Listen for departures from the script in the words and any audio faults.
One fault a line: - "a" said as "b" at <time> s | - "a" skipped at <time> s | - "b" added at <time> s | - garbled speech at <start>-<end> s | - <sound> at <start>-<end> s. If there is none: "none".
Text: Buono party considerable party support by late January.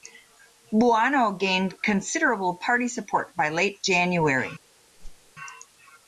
- "party" said as "gained" at 1.3 s
- whoosh at 5.0-5.3 s